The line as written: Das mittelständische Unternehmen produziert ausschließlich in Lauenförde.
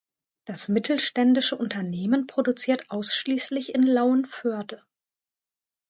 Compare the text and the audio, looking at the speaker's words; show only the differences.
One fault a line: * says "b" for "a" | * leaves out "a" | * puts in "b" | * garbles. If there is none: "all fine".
all fine